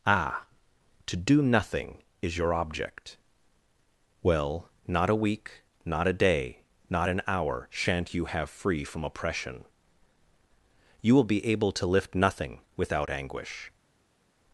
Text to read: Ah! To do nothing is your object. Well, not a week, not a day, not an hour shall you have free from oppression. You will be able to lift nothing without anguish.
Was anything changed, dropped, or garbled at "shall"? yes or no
yes